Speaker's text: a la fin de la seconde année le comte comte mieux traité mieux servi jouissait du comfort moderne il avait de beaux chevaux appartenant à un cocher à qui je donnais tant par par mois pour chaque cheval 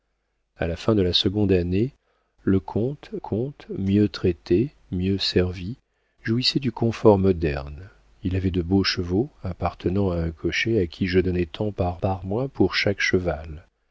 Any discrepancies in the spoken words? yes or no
no